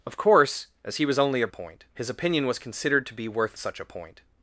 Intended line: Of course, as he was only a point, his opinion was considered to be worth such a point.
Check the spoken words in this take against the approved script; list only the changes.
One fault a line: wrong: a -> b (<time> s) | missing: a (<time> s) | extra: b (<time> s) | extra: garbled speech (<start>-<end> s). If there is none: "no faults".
no faults